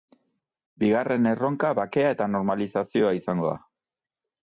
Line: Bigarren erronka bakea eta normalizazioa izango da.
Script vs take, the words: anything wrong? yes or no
no